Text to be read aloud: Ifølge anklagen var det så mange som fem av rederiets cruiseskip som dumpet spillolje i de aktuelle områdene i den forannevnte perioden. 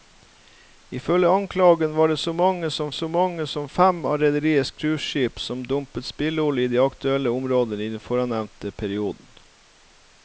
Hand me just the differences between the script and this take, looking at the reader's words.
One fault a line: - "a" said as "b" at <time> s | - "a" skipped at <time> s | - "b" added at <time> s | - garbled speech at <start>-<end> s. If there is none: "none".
- "så mange som" added at 2.9 s